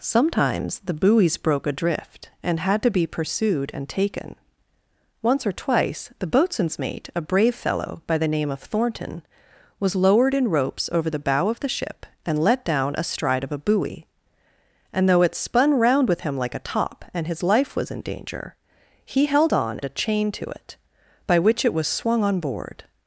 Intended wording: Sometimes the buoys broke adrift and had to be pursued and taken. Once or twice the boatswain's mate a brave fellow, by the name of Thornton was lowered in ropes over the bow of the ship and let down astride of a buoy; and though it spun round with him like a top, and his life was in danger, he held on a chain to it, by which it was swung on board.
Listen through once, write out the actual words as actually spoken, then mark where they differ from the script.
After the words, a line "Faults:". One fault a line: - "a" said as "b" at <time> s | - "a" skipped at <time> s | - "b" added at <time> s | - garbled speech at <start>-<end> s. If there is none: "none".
Sometimes the buoys broke adrift and had to be pursued and taken. Once or twice the boatswain's mate a brave fellow, by the name of Thornton was lowered in ropes over the bow of the ship and let down astride of a buoy; and though it spun round with him like a top, and his life was in danger, he held on a chain to it, by which it was swung on board.
Faults:
none